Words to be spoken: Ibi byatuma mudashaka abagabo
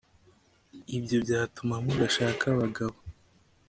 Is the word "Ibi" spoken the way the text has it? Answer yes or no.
no